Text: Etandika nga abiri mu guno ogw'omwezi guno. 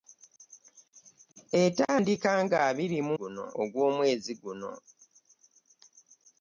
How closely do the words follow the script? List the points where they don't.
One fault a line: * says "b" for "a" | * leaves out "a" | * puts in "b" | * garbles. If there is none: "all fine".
all fine